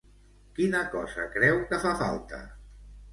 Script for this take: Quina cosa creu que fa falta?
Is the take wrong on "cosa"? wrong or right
right